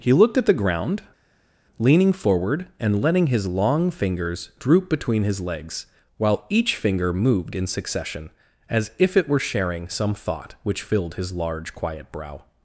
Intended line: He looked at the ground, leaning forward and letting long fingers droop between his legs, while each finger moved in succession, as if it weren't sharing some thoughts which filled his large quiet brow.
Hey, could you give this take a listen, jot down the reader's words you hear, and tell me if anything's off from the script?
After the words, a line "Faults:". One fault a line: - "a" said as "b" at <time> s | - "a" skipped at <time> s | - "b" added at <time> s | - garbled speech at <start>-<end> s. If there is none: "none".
He looked at the ground, leaning forward and letting his long fingers droop between his legs, while each finger moved in succession, as if it were sharing some thought which filled his large quiet brow.
Faults:
- "his" added at 3.3 s
- "weren't" said as "were" at 9.3 s
- "thoughts" said as "thought" at 10.1 s